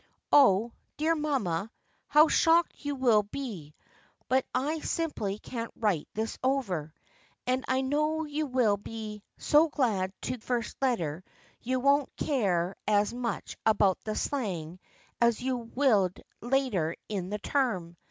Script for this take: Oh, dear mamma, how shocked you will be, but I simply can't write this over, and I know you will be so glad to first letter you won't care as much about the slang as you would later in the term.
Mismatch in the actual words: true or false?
false